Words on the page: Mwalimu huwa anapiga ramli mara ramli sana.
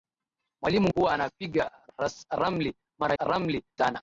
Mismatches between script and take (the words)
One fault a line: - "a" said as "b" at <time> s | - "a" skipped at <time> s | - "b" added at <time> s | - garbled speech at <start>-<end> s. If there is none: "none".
none